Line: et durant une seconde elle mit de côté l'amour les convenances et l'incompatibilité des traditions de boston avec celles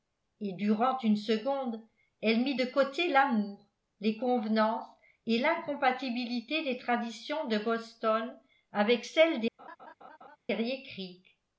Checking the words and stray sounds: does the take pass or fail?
fail